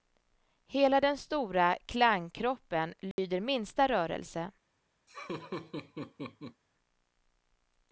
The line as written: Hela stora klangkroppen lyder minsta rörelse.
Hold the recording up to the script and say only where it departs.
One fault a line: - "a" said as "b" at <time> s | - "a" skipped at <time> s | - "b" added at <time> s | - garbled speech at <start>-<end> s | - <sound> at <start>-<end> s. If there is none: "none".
- "den" added at 1.0 s
- dropout at 3.1-3.2 s
- laugh at 5.1-6.6 s